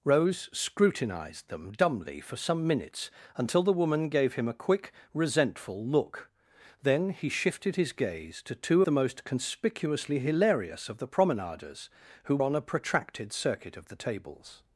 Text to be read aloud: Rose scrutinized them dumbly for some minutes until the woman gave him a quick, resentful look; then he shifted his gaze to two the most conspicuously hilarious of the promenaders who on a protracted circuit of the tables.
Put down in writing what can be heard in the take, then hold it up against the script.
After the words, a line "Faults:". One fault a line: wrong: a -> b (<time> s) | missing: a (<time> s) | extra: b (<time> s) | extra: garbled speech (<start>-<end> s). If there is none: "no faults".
Rose scrutinized them dumbly for some minutes until the woman gave him a quick, resentful look; then he shifted his gaze to two the most conspicuously hilarious of the promenaders who on a protracted circuit of the tables.
Faults:
no faults